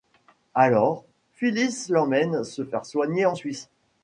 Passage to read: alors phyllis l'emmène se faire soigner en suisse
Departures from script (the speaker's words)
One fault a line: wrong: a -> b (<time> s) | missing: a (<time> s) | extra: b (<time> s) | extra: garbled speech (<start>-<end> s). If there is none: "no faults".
no faults